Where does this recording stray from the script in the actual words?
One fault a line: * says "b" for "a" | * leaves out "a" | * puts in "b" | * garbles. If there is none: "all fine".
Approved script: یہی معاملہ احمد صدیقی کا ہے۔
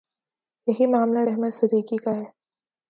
all fine